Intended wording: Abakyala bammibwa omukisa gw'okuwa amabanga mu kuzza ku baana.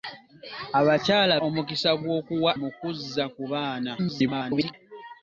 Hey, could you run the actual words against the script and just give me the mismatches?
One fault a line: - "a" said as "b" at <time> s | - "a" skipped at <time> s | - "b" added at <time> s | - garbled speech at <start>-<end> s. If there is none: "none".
- "bammibwa" skipped at 1.3 s
- "amabanga" skipped at 2.5 s
- garbled speech at 4.0-4.7 s